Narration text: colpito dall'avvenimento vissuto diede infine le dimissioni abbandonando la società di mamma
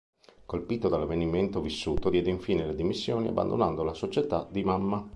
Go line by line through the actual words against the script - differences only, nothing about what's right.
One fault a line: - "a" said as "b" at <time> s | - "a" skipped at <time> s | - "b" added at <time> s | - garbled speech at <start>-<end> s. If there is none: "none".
none